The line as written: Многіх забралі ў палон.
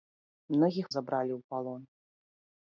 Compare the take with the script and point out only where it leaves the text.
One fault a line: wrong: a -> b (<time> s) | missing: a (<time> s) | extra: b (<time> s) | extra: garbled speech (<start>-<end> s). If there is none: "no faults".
no faults